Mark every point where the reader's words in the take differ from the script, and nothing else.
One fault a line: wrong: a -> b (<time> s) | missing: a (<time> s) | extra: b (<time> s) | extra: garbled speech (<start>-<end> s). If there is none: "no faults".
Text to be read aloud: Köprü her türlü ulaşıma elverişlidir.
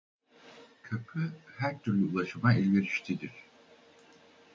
no faults